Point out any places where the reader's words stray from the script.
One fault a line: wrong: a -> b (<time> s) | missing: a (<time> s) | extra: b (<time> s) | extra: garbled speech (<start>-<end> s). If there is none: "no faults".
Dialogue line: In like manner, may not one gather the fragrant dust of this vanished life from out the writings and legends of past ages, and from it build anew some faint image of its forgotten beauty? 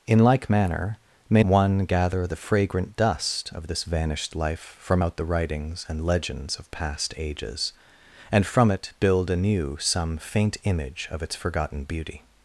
missing: not (1.4 s)